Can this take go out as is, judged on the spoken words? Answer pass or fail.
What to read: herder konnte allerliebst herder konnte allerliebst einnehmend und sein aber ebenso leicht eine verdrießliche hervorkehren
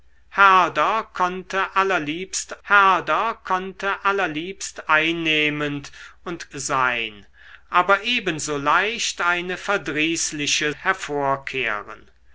pass